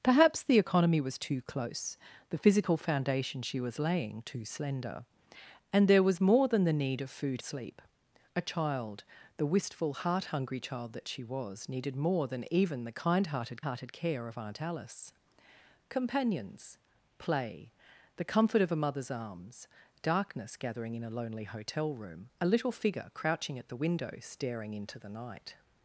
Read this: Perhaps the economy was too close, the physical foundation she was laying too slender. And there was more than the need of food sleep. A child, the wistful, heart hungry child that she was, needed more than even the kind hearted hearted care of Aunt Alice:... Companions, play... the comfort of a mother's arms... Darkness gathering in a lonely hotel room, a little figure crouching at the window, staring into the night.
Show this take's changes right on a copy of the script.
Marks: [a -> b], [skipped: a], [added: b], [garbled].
Perhaps the economy was too close, the physical foundation she was laying too slender. And there was more than the need of food sleep. A child, the wistful, heart hungry child that she was, needed more than even the kind hearted hearted care of Aunt Alice:... Companions, play... the comfort of a mother's arms... Darkness gathering in a lonely hotel room, a little figure crouching at the window, staring into the night.